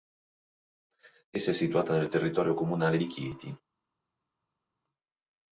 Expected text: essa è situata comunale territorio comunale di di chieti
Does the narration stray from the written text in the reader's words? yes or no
yes